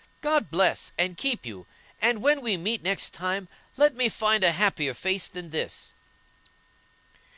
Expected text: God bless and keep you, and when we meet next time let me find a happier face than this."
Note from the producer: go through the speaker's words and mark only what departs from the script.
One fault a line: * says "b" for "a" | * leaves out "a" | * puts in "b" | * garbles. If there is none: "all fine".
all fine